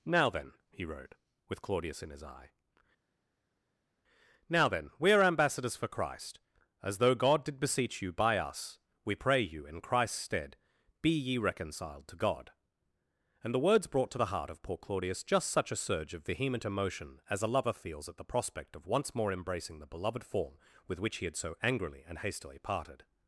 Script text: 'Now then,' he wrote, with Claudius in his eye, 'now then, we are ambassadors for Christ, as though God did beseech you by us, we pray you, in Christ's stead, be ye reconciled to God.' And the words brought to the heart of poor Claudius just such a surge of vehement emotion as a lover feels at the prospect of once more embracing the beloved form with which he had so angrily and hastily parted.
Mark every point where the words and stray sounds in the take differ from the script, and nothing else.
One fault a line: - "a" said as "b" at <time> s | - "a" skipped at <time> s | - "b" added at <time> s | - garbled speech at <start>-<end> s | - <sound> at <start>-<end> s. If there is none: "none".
none